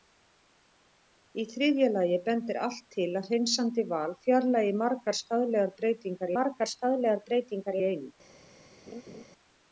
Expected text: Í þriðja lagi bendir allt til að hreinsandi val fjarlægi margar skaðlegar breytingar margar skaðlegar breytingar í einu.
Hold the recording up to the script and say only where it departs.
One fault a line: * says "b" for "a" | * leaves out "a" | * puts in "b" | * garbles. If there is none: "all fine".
all fine